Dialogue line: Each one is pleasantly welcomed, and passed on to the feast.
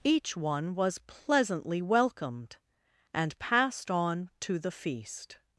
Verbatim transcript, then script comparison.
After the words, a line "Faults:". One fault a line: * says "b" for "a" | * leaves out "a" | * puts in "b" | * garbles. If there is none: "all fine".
Each one was pleasantly welcomed, and passed on to the feast.
Faults:
* says "was" for "is"